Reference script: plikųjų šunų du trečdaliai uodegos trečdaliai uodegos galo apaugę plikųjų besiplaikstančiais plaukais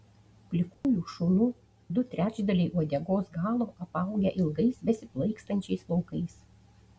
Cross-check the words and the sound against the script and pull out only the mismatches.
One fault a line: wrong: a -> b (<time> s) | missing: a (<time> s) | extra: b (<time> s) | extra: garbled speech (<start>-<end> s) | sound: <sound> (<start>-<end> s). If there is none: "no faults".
sound: dropout (0.7-0.8 s)
missing: trečdaliai uodegos (3.3 s)
wrong: plikųjų -> ilgais (4.4 s)